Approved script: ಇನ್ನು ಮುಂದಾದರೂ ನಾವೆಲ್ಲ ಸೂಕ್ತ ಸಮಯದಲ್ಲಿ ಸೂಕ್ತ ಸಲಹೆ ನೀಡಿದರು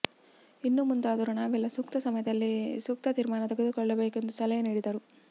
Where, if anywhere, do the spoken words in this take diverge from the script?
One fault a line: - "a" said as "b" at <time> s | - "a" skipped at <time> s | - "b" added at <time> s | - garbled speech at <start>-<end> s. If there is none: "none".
- "ತೀರ್ಮಾನ ತೆಗೆದುಕೊಳ್ಳಬೇಕು ಎಂದು" added at 3.1 s